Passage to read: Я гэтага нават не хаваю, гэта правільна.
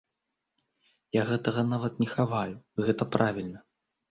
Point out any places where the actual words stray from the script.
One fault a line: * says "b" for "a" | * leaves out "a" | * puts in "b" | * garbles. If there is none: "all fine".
all fine